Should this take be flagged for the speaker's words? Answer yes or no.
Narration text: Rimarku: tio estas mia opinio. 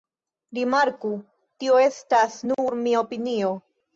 yes